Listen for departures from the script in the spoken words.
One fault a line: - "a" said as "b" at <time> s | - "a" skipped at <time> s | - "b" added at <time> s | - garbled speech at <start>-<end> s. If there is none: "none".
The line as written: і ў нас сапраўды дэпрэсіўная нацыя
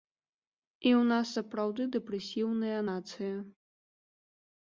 none